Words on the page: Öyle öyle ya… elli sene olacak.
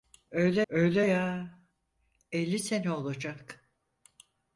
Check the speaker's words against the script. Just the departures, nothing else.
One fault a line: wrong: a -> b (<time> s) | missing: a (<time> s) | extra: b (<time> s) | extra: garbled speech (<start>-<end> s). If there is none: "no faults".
no faults